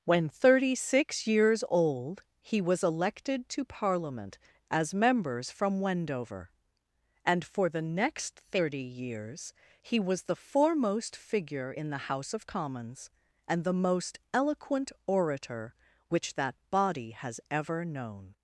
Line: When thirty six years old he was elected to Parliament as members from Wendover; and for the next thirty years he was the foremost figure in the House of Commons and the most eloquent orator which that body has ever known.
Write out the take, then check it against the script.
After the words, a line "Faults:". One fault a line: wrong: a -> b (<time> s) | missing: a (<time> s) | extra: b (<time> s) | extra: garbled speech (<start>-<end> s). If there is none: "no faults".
When thirty six years old he was elected to Parliament as members from Wendover; and for the next thirty years he was the foremost figure in the House of Commons and the most eloquent orator which that body has ever known.
Faults:
no faults